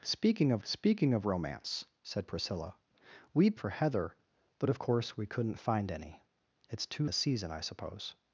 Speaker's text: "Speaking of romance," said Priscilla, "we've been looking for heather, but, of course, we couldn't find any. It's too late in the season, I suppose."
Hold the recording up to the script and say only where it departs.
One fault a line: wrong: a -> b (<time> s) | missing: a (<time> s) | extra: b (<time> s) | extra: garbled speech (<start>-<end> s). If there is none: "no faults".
extra: speaking of (0.6 s)
missing: been looking (3.6 s)
missing: late in (7.0 s)